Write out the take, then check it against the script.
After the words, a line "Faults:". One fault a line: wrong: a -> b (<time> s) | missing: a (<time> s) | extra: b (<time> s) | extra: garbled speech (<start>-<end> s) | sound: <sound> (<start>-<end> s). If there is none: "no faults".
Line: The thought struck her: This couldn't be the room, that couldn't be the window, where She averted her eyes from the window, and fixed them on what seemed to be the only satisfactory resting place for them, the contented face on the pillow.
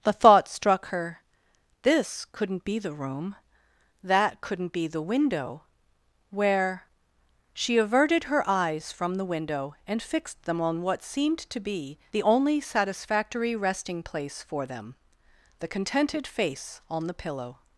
The thought struck her: This couldn't be the room, that couldn't be the window, where She averted her eyes from the window, and fixed them on what seemed to be the only satisfactory resting place for them, the contented face on the pillow.
Faults:
no faults